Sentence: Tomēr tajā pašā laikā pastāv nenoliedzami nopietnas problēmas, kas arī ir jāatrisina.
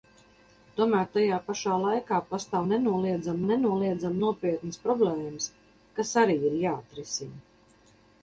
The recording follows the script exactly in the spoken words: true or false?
false